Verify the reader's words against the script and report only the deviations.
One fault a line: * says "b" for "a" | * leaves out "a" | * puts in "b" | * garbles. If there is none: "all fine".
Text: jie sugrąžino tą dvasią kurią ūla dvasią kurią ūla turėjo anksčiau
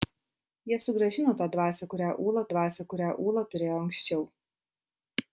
all fine